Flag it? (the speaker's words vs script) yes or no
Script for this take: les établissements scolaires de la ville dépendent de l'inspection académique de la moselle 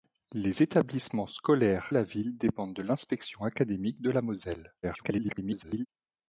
yes